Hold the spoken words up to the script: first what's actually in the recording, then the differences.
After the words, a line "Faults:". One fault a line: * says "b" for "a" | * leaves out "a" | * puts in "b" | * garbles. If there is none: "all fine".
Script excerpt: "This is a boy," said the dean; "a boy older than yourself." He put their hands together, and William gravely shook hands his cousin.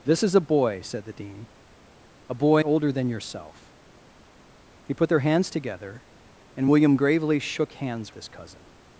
"This is a boy," said the dean; "a boy older than yourself." He put their hands together, and William gravely shook hands his cousin.
Faults:
all fine